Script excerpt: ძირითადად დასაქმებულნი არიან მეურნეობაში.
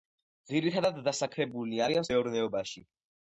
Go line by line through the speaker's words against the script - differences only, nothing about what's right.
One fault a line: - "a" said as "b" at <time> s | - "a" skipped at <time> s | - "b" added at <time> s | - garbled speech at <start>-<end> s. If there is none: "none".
none